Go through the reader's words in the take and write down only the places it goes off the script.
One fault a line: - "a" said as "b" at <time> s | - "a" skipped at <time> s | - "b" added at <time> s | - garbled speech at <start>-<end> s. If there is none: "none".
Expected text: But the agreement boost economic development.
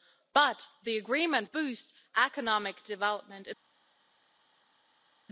none